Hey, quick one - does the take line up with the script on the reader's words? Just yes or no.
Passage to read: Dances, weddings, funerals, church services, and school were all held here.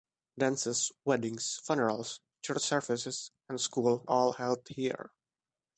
no